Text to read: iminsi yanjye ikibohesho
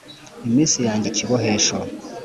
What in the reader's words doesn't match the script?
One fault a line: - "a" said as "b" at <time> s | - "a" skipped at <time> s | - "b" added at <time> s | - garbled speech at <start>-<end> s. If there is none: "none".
none